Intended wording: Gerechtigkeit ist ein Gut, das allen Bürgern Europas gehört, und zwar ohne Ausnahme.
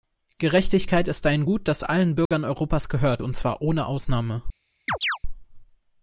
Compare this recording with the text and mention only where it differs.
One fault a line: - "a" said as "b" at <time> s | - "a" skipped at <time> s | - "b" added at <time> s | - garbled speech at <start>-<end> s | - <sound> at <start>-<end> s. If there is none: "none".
- dropout at 2.3-2.3 s
- chirp at 4.9-5.2 s